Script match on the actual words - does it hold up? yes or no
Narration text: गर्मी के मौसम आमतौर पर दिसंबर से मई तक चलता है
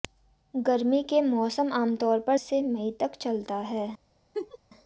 no